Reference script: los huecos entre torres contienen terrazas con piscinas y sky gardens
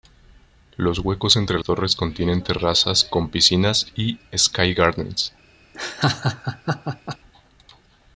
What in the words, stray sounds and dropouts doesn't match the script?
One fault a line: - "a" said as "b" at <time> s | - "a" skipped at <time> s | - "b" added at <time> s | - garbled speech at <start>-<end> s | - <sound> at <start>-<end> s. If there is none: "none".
- laugh at 5.7-7.2 s